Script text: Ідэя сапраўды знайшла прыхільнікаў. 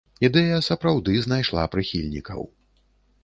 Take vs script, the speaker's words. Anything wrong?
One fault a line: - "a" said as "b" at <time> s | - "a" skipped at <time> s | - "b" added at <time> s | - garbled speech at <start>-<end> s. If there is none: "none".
none